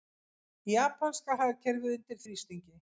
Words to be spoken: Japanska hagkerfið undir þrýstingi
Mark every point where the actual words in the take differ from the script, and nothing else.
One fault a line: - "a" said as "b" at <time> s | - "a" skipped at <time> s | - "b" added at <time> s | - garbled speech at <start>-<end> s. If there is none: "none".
none